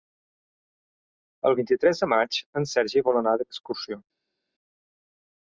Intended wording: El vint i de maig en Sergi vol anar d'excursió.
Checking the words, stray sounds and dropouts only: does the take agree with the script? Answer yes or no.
no